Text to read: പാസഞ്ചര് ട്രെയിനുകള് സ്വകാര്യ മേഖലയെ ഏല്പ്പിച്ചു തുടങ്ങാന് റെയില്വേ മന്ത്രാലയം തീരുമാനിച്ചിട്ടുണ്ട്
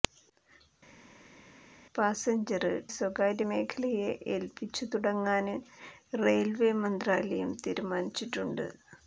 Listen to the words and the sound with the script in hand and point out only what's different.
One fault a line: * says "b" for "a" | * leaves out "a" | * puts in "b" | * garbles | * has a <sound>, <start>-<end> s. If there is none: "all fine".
* leaves out "ട്രെയിനുകള്"